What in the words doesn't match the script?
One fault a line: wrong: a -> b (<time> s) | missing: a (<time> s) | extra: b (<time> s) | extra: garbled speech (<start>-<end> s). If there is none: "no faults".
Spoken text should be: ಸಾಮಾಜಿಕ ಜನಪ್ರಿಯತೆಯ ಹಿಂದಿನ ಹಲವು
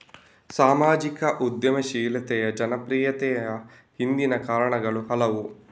extra: ಉದ್ಯಮಶೀಲತೆಯ (1.4 s)
extra: ಕಾರಣಗಳು (4.5 s)